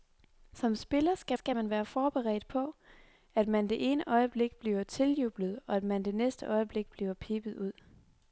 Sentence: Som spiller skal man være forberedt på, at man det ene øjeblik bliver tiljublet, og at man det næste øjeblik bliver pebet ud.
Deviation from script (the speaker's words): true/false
true